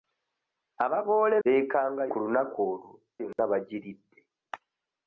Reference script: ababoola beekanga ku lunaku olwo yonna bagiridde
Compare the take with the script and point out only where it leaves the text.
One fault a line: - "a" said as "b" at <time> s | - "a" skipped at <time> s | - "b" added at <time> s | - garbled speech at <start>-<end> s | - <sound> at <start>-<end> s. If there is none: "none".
- dropout at 3.3-3.4 s